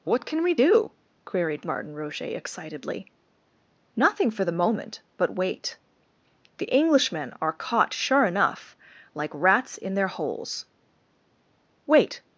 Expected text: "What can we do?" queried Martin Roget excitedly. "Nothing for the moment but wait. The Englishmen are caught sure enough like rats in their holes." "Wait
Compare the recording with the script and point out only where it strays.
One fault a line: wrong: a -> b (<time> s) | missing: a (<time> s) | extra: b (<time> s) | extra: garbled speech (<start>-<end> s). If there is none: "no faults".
no faults